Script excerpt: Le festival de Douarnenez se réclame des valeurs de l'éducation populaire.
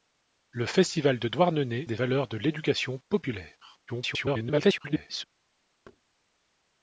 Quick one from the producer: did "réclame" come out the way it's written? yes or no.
no